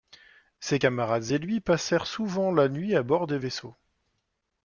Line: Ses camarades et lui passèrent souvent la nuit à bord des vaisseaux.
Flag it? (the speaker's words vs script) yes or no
no